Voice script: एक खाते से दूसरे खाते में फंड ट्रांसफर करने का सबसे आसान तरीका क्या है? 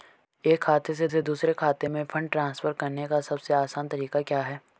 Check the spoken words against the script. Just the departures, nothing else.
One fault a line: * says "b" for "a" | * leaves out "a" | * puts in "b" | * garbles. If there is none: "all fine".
* puts in "से"